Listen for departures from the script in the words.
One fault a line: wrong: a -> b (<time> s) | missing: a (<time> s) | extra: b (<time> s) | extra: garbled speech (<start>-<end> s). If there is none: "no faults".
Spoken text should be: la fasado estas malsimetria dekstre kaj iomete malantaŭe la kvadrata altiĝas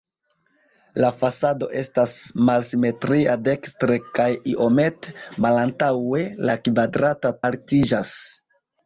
no faults